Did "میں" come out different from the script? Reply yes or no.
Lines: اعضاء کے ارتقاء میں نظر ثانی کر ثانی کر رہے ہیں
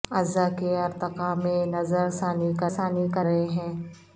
no